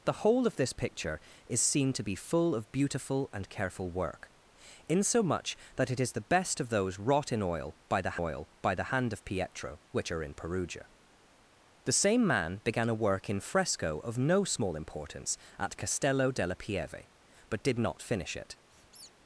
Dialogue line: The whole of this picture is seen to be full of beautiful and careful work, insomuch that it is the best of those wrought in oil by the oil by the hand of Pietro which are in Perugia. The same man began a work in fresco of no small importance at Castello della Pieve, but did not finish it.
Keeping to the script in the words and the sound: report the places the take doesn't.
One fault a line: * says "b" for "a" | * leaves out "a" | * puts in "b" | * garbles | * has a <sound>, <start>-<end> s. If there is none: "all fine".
* has a squeak, 18.7-19.1 s